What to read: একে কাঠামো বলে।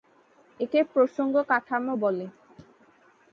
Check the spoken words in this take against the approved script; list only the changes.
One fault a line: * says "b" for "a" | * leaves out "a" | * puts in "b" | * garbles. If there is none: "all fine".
* puts in "প্রসঙ্গ"